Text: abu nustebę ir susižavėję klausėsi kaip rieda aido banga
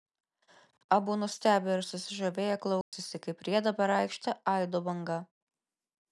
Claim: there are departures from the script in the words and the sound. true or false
true